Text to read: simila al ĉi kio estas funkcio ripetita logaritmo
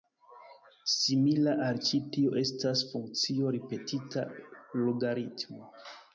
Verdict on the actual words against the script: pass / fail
fail